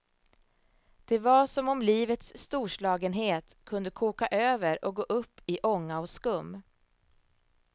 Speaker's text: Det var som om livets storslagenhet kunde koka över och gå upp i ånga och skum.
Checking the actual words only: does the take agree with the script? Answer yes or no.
yes